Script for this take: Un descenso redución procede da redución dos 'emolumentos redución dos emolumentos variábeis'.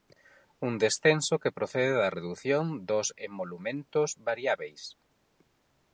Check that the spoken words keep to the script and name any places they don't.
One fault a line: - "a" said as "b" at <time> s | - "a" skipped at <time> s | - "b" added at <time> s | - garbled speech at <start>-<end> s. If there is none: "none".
- "redución" said as "que" at 1.4 s
- "redución dos emolumentos" skipped at 4.1 s